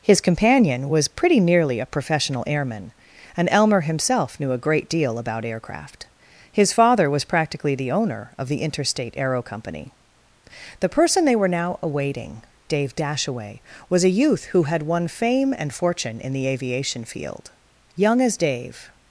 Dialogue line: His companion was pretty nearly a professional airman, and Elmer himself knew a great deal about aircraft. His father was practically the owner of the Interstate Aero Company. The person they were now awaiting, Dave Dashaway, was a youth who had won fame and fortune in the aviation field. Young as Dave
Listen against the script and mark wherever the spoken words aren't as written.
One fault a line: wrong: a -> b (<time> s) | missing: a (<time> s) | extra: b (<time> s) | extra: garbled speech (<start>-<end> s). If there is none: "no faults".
no faults